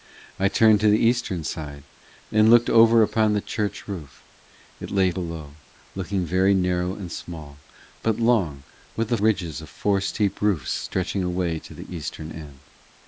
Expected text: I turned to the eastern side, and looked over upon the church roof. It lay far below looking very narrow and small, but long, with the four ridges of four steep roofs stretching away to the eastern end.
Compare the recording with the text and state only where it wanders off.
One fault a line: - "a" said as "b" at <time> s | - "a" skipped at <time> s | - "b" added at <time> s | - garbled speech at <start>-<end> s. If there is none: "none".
- "far" skipped at 5.1 s
- "four" skipped at 9.2 s